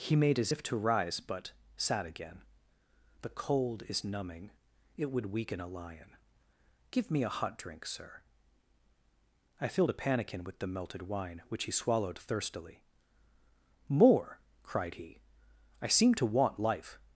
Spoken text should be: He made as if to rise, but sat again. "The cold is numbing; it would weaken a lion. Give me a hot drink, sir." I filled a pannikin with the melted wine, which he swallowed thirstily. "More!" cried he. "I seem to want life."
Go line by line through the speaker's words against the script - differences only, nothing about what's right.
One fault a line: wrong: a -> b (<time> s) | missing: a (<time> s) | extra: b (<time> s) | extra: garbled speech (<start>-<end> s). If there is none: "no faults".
no faults